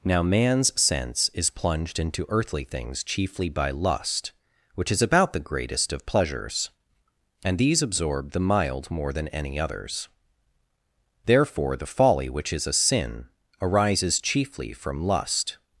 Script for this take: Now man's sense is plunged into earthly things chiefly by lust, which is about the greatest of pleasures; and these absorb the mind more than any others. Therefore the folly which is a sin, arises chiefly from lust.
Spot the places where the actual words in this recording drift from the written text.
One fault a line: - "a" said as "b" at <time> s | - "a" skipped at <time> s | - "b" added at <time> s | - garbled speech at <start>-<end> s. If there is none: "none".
- "mind" said as "mild" at 8.4 s